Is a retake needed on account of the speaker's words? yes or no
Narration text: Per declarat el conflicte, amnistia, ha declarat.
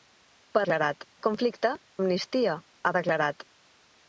no